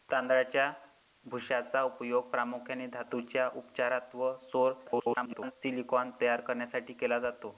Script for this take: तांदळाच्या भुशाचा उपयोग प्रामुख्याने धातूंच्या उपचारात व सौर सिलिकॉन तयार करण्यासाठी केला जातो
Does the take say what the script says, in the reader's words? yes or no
no